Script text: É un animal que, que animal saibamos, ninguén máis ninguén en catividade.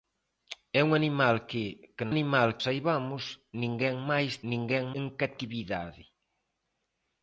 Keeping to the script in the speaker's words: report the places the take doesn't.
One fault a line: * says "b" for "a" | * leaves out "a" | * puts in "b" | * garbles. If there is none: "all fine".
all fine